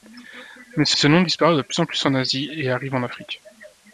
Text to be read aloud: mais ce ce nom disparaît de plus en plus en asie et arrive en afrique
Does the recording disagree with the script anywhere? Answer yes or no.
no